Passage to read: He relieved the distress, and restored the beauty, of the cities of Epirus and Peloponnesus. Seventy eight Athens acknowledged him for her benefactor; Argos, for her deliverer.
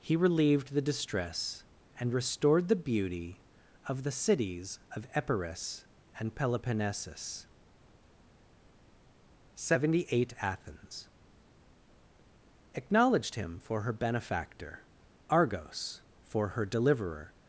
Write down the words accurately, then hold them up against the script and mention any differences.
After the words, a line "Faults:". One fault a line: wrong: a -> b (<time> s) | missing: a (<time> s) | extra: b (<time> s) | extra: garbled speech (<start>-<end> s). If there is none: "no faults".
He relieved the distress, and restored the beauty, of the cities of Epirus and Peloponnesus. Seventy eight Athens acknowledged him for her benefactor; Argos, for her deliverer.
Faults:
no faults